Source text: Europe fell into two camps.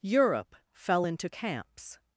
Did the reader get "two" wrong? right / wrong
wrong